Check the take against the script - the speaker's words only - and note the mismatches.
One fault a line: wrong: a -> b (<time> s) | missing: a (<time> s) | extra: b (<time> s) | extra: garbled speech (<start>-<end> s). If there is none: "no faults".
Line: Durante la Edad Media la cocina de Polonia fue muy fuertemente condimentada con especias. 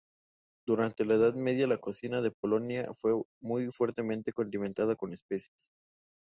no faults